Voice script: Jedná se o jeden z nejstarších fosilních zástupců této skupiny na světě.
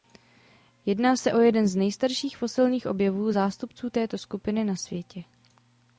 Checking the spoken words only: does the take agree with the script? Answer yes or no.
no